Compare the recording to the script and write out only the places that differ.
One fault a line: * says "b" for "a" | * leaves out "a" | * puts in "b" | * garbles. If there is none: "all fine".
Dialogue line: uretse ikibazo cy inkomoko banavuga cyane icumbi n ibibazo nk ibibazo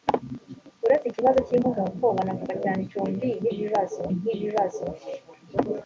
all fine